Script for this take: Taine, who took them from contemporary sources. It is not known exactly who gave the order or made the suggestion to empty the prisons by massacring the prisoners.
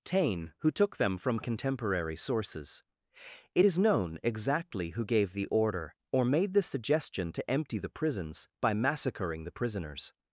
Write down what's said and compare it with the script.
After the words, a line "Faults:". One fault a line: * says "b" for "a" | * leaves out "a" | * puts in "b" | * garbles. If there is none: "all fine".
Taine, who took them from contemporary sources. It is known exactly who gave the order or made the suggestion to empty the prisons by massacring the prisoners.
Faults:
* leaves out "not"